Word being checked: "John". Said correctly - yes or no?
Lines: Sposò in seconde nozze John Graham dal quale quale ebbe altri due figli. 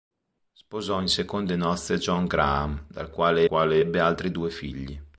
yes